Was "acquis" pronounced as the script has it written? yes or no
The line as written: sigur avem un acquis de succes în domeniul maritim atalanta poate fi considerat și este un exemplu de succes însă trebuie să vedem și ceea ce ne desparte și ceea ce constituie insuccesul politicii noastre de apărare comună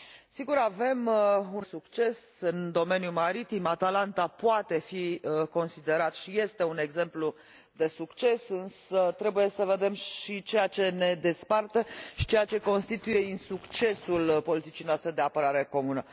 no